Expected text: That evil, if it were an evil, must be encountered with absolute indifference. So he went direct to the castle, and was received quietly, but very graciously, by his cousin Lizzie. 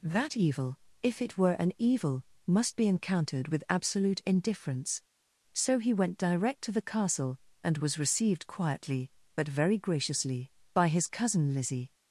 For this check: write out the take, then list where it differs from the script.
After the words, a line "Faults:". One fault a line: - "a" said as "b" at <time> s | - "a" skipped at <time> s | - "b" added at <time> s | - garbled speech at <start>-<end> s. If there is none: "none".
That evil, if it were an evil, must be encountered with absolute indifference. So he went direct to the castle, and was received quietly, but very graciously, by his cousin Lizzie.
Faults:
none